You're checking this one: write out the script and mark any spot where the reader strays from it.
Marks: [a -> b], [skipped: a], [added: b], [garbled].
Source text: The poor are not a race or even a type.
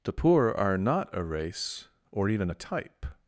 The poor are not a race or even a type.